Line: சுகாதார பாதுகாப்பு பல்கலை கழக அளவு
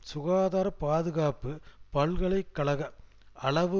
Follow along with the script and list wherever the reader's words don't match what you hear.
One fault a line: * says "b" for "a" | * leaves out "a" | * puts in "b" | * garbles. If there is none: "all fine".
all fine